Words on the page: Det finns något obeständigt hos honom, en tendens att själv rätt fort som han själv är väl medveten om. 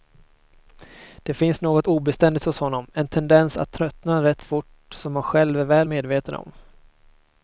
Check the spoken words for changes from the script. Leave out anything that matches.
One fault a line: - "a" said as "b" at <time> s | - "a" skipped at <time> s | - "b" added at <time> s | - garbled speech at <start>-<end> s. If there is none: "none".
- "själv" said as "tröttna" at 3.7 s